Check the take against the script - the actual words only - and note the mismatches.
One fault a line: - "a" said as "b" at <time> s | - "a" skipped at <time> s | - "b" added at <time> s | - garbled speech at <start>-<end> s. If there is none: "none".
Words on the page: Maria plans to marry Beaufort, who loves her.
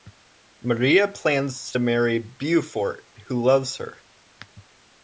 none